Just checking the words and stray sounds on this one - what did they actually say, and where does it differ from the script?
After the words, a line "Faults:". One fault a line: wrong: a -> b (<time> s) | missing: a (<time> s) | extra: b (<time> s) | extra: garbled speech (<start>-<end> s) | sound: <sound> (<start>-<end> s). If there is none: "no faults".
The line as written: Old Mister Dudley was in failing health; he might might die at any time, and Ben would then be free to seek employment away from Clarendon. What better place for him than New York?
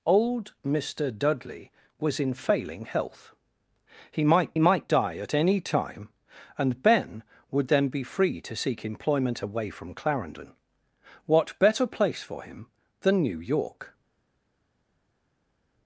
Old Mister Dudley was in failing health; he might might die at any time, and Ben would then be free to seek employment away from Clarendon. What better place for him than New York?
Faults:
no faults